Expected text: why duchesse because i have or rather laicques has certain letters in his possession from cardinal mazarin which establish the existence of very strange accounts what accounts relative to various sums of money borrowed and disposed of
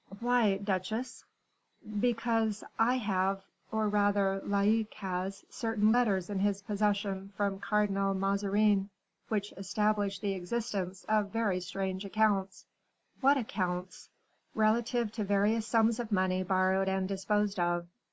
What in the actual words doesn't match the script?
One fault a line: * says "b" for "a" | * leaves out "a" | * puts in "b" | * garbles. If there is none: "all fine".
all fine